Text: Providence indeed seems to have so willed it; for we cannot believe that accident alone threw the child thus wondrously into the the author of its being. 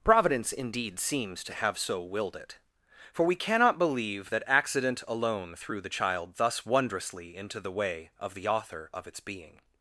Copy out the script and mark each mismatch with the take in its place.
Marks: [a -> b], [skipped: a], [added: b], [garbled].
Providence indeed seems to have so willed it; for we cannot believe that accident alone threw the child thus wondrously into the [added: way of] the author of its being.